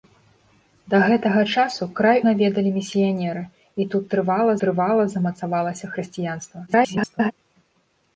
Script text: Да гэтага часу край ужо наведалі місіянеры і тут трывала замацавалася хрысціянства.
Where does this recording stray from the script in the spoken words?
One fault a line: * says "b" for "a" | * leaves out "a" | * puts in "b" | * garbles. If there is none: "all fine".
* leaves out "ужо"
* puts in "трывала"
* garbles